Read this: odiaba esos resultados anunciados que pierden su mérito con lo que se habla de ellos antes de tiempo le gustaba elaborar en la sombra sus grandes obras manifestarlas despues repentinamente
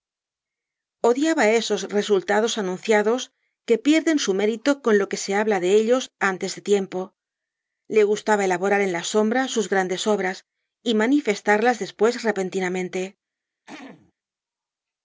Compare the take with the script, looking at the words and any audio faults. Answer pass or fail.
fail